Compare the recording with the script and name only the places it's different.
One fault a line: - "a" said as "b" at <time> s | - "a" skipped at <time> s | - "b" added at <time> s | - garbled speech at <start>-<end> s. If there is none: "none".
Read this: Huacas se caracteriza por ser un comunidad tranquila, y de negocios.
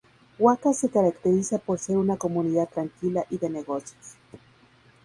- "un" said as "una" at 2.0 s